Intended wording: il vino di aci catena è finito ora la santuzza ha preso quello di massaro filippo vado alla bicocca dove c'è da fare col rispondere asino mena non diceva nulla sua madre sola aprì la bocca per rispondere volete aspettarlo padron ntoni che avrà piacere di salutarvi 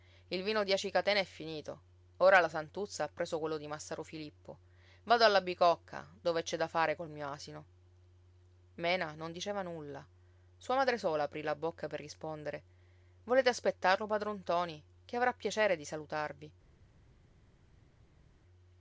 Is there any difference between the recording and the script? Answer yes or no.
yes